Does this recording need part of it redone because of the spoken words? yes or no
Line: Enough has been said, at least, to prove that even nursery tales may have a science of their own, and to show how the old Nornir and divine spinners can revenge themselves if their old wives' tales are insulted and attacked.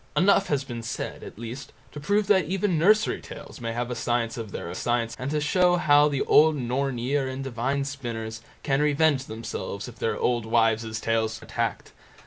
yes